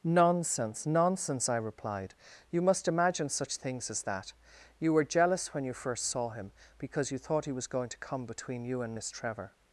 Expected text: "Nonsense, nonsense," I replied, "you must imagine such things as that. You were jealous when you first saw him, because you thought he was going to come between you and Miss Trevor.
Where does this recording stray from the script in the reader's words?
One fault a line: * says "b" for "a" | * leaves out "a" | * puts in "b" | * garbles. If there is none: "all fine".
all fine